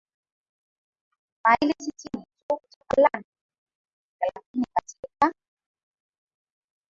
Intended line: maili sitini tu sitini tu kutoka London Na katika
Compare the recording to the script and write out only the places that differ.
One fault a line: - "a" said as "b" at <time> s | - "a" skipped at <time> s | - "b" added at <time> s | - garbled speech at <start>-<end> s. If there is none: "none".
- "sitini tu" skipped at 2.6 s
- "Na" said as "Lakini" at 4.2 s